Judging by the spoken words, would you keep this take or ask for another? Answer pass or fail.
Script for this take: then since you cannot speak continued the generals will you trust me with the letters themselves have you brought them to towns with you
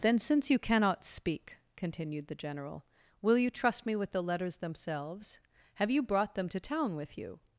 fail